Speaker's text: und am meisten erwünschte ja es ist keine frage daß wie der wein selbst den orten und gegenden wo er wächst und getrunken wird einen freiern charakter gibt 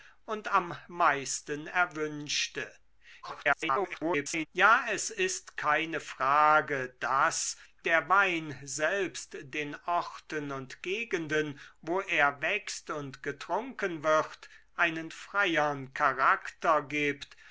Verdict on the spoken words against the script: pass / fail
fail